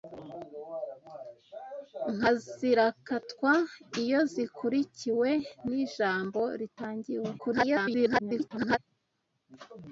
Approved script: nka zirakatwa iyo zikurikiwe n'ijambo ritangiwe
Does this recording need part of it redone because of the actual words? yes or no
yes